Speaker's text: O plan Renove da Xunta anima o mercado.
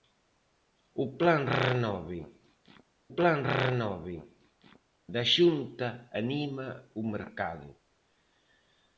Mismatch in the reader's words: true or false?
true